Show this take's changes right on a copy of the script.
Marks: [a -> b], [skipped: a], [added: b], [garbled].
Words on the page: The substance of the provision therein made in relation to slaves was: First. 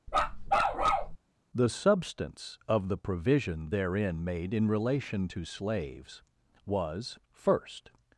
The substance of the provision therein made in relation to slaves was: First.